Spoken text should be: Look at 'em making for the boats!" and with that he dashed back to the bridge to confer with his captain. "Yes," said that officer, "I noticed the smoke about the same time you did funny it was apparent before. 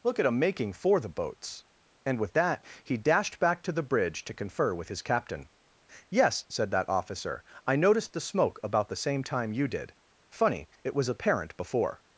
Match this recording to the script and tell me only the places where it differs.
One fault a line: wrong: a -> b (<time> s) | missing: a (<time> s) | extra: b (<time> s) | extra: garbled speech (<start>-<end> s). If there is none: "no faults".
no faults